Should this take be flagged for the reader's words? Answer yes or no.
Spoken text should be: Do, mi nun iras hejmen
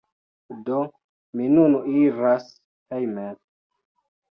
no